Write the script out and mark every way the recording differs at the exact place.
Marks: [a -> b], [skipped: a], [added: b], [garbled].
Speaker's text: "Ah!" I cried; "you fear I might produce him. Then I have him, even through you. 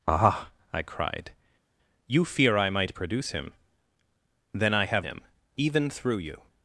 "Ah!" I cried; "you fear I might produce him. Then I have him, even through you.